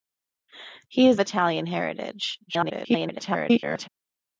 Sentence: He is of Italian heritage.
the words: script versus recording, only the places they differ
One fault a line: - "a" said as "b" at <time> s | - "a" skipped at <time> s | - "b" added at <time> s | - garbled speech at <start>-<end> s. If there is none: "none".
- "of" skipped at 1.2 s
- garbled speech at 2.5-3.9 s